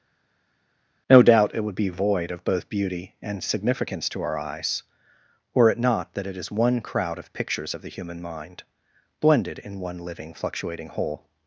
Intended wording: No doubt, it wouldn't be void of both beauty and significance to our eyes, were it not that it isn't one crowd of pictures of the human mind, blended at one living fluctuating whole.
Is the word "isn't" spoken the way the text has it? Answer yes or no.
no